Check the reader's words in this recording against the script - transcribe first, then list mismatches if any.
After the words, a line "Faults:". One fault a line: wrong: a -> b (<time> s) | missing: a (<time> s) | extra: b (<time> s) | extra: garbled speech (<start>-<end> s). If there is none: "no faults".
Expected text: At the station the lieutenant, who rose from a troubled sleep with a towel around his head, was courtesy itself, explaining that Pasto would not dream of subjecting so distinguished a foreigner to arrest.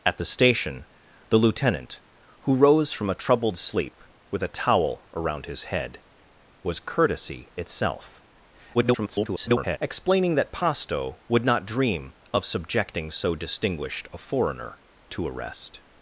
At the station the lieutenant, who rose from a troubled sleep with a towel around his head, was courtesy itself, [garbled] explaining that Pasto would not dream of subjecting so distinguished a foreigner to arrest.
Faults:
extra: garbled speech (8.7-9.8 s)